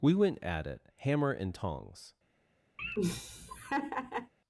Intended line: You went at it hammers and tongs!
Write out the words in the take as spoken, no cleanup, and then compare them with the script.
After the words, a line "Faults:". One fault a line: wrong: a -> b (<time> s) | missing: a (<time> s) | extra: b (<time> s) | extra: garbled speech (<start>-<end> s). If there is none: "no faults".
We went at it hammer and tongs!
Faults:
wrong: You -> We (0.0 s)
wrong: hammers -> hammer (1.0 s)